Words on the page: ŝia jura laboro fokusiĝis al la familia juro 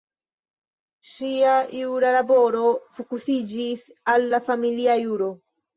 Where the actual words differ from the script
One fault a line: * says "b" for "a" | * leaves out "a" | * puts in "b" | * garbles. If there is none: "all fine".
all fine